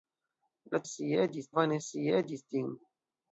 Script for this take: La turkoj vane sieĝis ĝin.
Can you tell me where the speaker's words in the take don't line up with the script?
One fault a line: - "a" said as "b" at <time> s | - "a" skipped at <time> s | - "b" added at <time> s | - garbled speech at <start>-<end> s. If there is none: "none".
- "turkoj" said as "sieĝis" at 0.9 s